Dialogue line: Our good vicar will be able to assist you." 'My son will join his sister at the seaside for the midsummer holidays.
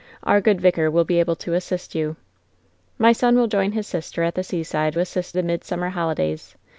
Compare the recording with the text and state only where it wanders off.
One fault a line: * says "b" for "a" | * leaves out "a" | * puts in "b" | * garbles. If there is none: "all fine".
* says "assist" for "for"